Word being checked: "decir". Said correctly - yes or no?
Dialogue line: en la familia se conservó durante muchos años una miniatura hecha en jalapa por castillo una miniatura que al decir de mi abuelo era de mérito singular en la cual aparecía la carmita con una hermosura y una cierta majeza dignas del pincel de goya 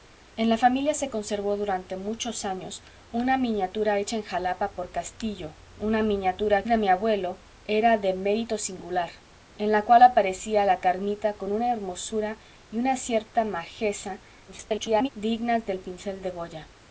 no